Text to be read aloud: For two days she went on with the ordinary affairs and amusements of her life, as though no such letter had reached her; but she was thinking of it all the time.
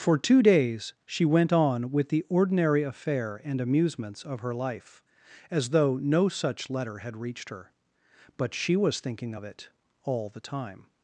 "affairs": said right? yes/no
no